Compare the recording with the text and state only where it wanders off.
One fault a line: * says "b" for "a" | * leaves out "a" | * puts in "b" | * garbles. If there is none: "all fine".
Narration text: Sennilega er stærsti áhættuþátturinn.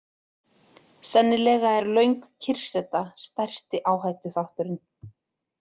* puts in "löng kyrrseta"